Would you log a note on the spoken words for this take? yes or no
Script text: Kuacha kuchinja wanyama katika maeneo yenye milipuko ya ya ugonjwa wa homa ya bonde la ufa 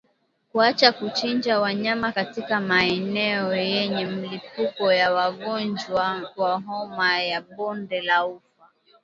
yes